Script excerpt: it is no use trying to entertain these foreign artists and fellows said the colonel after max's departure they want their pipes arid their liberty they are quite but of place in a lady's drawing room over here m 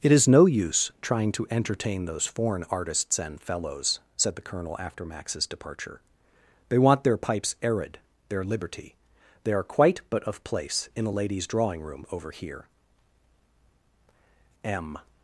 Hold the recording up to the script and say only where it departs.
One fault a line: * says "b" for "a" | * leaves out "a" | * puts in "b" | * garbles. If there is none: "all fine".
* says "those" for "these"